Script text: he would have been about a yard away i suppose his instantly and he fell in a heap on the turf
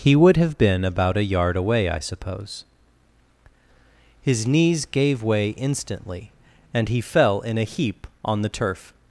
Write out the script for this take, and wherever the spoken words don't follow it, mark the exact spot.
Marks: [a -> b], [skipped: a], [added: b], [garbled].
he would have been about a yard away i suppose his [added: knees gave way] instantly and he fell in a heap on the turf